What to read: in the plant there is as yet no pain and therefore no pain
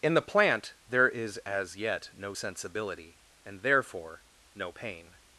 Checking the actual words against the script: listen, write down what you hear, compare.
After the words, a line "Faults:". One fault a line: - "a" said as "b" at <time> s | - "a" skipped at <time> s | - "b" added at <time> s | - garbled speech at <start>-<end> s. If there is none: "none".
in the plant there is as yet no sensibility and therefore no pain
Faults:
- "pain" said as "sensibility" at 2.3 s